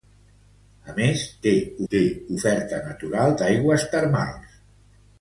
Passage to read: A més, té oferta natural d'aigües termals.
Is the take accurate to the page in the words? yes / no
no